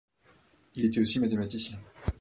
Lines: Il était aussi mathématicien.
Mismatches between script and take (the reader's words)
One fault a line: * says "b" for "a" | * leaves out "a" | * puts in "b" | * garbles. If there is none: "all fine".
all fine